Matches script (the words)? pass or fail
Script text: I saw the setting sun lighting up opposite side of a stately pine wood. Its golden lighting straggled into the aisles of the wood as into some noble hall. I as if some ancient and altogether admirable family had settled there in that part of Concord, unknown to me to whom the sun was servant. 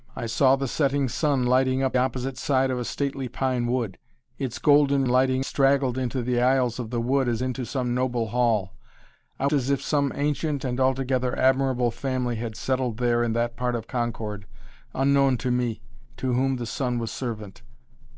pass